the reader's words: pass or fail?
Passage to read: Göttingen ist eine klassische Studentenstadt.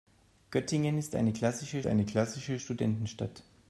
fail